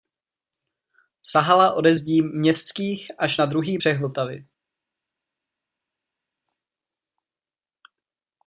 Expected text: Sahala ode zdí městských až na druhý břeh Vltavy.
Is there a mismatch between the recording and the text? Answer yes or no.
no